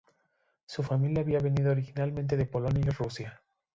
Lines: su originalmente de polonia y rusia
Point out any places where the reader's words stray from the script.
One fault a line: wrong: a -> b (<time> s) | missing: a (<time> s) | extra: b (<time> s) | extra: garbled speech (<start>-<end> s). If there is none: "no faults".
extra: familia había venido (0.8 s)